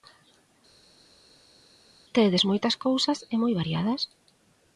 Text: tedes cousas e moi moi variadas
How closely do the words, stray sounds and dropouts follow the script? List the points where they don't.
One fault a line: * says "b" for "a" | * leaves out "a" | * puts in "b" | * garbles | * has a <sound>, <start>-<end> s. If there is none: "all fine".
* puts in "moitas"
* leaves out "moi"